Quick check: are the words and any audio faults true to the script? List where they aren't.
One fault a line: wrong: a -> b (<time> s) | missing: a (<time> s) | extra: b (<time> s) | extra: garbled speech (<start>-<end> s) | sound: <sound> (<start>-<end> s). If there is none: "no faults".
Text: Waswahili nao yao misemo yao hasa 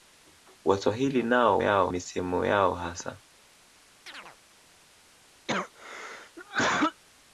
sound: chirp (4.1-4.4 s)
sound: cough (5.5-7.0 s)